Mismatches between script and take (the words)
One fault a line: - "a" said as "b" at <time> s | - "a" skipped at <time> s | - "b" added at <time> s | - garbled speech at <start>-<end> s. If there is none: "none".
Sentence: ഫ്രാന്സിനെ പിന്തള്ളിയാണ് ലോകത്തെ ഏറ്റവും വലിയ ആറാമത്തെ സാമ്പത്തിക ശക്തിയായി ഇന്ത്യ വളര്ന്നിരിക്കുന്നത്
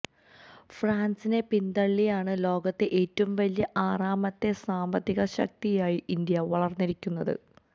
none